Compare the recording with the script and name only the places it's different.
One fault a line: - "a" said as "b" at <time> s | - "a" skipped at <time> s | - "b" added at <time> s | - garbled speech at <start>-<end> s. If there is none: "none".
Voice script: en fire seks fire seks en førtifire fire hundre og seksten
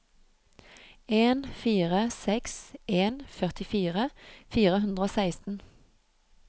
- "fire seks" skipped at 2.6 s